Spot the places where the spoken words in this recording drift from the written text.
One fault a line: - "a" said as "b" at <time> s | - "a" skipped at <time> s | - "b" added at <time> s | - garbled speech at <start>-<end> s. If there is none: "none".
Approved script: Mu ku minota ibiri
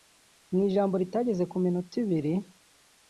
- "ijambo ritageze" added at 0.7 s